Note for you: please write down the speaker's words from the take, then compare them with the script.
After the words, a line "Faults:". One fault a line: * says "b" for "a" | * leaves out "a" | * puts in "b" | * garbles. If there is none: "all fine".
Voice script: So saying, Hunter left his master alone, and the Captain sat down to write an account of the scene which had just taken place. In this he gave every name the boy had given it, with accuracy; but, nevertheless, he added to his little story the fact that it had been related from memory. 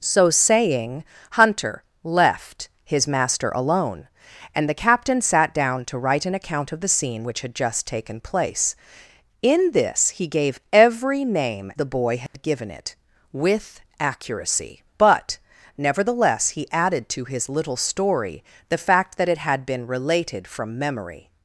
So saying, Hunter left his master alone, and the Captain sat down to write an account of the scene which had just taken place. In this he gave every name the boy had given it, with accuracy; but, nevertheless, he added to his little story the fact that it had been related from memory.
Faults:
all fine